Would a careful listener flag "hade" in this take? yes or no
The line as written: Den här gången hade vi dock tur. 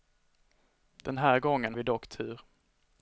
yes